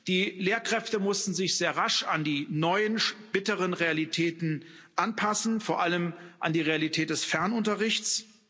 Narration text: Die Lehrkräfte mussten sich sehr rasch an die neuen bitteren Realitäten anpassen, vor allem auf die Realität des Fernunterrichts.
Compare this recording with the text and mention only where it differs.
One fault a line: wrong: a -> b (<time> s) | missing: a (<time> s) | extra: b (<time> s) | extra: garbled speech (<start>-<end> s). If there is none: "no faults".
wrong: auf -> an (6.4 s)